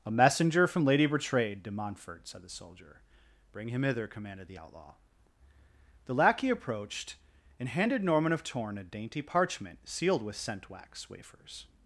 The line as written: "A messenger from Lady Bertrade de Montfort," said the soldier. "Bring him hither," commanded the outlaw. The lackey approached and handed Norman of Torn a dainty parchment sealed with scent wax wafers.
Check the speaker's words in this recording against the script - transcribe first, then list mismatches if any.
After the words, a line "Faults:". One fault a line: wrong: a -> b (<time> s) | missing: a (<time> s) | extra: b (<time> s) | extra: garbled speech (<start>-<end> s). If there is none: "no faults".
"A messenger from Lady Bertrade de Montfort," said the soldier. "Bring him hither," commanded the outlaw. The lackey approached and handed Norman of Torn a dainty parchment sealed with scent wax wafers.
Faults:
no faults